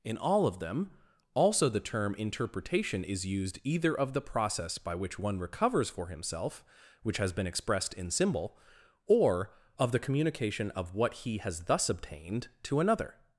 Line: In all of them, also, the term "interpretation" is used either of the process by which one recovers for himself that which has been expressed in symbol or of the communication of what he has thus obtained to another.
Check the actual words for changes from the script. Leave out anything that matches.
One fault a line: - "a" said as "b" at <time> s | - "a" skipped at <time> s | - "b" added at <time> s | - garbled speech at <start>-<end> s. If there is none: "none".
- "that" skipped at 6.7 s